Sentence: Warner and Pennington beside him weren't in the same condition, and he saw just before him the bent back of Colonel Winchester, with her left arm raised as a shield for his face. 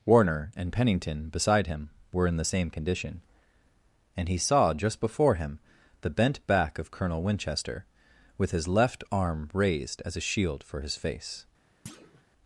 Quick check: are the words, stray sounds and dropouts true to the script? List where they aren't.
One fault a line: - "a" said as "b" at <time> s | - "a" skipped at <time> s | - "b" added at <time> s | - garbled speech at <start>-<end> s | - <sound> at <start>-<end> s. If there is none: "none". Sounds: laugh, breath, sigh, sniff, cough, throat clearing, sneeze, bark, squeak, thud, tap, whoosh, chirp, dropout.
- "weren't" said as "were" at 2.1 s
- "her" said as "his" at 8.5 s
- thud at 11.9-12.2 s